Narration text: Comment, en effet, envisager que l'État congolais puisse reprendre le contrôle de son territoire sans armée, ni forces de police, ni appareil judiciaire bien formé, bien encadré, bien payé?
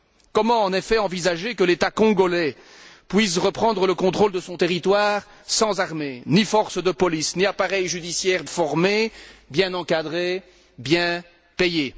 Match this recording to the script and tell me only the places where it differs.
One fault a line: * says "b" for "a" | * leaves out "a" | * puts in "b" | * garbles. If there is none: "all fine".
* leaves out "bien"